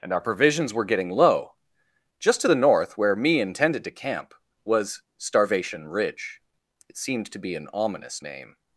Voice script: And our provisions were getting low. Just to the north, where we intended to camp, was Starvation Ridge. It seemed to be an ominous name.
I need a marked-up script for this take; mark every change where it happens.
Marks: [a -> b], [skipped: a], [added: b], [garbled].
And our provisions were getting low. Just to the north, where [we -> me] intended to camp, was Starvation Ridge. It seemed to be an ominous name.